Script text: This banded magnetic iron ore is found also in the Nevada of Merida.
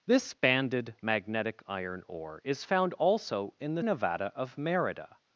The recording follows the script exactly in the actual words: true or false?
true